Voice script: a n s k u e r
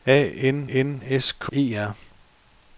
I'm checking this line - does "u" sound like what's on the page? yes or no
no